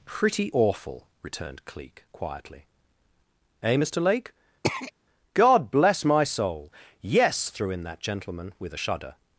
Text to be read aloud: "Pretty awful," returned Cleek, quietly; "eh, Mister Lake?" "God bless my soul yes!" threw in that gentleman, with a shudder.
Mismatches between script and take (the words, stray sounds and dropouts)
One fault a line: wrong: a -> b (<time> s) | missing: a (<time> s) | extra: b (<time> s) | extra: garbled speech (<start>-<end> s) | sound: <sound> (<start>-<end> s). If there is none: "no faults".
sound: throat clearing (4.6-4.9 s)